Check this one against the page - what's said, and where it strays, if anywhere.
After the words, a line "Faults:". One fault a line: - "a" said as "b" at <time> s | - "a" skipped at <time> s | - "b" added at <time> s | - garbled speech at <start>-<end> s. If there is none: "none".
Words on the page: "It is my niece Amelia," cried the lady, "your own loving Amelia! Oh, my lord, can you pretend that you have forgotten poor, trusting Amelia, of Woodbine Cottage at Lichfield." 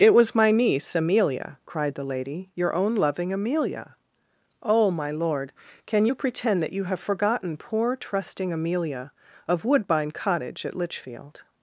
"It was my niece Amelia," cried the lady, "your own loving Amelia! Oh, my lord, can you pretend that you have forgotten poor, trusting Amelia, of Woodbine Cottage at Lichfield."
Faults:
- "is" said as "was" at 0.1 s